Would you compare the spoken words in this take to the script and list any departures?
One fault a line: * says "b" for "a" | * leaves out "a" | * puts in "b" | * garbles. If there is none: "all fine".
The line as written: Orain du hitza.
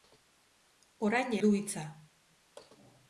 all fine